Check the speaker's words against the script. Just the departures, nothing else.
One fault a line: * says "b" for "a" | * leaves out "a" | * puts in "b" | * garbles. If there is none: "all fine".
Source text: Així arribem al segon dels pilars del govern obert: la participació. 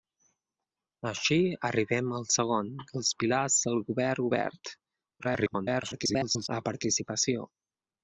* garbles